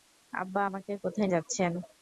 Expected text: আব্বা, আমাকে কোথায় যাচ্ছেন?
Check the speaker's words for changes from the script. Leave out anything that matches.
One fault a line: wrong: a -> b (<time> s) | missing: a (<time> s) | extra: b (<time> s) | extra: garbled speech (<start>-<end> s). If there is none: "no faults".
no faults